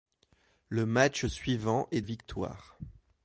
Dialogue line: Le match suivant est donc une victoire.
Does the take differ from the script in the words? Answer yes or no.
yes